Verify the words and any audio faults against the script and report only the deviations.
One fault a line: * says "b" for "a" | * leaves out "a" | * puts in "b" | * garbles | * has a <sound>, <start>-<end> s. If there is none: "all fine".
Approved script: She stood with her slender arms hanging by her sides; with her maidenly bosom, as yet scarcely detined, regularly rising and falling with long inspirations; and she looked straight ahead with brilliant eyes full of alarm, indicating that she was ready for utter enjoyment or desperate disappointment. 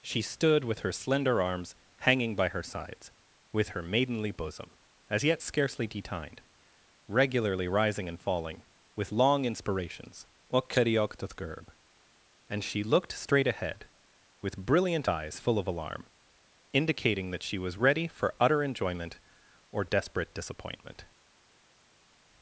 all fine